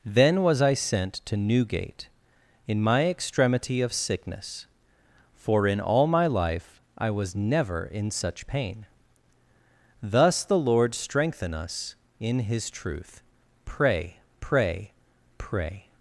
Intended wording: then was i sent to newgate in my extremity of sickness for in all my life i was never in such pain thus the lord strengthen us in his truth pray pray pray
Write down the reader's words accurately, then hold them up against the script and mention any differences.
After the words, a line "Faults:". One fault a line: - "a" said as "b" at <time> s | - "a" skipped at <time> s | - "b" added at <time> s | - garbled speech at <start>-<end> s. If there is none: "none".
then was i sent to newgate in my extremity of sickness for in all my life i was never in such pain thus the lord strengthen us in his truth pray pray pray
Faults:
none